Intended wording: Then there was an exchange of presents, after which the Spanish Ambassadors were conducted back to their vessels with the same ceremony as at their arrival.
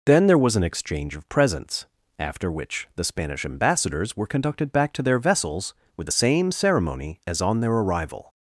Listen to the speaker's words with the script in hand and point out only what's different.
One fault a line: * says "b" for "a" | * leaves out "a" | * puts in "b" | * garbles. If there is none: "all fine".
* says "on" for "at"